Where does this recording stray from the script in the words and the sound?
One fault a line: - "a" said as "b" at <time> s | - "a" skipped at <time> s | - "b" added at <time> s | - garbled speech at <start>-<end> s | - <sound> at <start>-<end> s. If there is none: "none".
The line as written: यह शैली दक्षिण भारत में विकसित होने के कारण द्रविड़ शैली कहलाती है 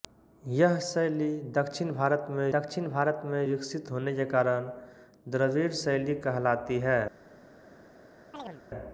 - "दक्षिण भारत में" added at 2.5 s
- chirp at 8.3-8.6 s